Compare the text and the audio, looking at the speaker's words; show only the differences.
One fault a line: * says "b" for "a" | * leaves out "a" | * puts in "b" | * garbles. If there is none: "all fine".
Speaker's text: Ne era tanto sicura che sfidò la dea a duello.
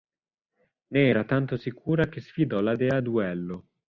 all fine